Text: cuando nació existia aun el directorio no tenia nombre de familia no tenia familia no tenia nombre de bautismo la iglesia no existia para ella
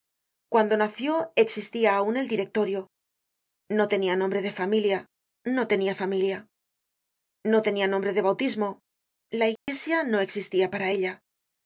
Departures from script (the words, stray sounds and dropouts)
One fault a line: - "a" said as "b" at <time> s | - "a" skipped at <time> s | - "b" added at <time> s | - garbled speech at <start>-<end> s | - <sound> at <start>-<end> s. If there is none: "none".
- dropout at 9.6-9.7 s